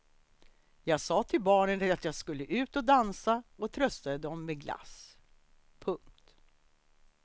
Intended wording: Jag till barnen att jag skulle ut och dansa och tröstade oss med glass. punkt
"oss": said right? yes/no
no